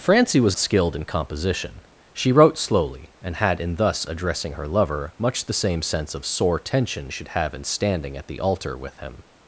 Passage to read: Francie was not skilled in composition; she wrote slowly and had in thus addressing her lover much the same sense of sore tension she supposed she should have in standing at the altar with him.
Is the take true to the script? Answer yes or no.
no